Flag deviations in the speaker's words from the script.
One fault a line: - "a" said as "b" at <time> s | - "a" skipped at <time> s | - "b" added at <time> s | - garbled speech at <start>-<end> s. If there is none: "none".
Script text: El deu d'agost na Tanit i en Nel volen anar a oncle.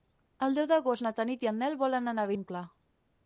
none